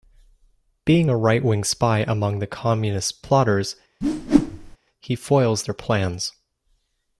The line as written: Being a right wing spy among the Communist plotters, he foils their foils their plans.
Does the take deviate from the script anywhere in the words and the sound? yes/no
yes